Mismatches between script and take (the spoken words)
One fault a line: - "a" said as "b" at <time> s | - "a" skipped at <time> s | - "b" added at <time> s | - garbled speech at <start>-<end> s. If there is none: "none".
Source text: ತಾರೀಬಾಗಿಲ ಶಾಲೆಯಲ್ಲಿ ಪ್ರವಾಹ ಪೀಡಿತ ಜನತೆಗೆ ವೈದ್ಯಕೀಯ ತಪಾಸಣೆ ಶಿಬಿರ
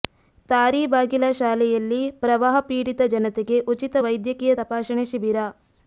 - "ಉಚಿತ" added at 3.7 s